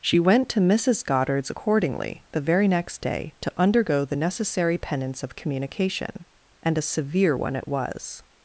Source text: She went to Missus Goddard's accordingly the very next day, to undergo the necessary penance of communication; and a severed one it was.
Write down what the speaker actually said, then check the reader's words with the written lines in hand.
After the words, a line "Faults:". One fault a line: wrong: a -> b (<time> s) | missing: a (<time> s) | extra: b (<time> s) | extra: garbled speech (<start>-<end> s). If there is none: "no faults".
She went to Missus Goddard's accordingly the very next day, to undergo the necessary penance of communication; and a severe one it was.
Faults:
wrong: severed -> severe (6.8 s)